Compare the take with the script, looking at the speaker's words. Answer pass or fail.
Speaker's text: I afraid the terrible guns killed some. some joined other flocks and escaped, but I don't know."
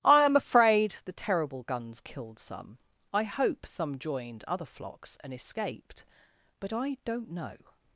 fail